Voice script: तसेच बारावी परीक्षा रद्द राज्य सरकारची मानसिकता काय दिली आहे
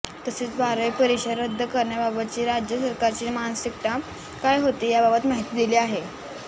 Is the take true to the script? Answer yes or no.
no